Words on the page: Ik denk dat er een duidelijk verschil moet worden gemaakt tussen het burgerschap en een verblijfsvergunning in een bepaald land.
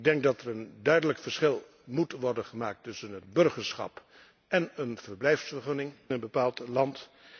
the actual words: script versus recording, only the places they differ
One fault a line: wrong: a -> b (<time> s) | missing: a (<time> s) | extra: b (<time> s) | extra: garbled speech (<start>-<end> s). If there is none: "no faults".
missing: in (5.9 s)